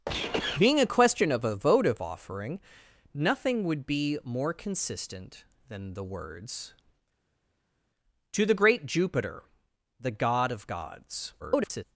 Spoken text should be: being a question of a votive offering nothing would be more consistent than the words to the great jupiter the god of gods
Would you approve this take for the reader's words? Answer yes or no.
no